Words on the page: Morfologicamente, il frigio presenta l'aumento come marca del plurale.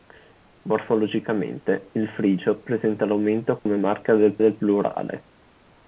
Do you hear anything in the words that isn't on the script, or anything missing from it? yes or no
yes